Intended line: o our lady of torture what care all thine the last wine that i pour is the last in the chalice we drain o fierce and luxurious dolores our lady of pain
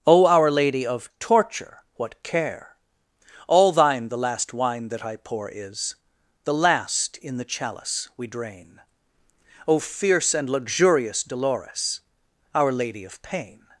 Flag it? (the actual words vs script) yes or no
no